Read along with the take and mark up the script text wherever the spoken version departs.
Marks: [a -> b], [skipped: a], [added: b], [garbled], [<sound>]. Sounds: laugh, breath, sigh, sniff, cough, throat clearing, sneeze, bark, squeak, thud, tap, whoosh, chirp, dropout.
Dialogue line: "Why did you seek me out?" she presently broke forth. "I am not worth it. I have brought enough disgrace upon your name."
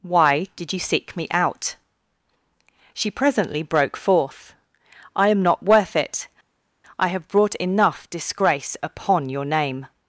"Why did you seek me out?" she presently broke forth. "I am not worth it. I have brought enough disgrace upon your name."